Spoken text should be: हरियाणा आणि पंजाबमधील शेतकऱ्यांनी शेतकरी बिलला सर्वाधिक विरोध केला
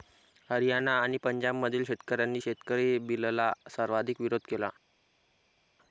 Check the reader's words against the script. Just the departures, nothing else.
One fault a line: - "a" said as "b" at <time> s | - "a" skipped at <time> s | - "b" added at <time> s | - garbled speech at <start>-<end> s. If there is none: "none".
none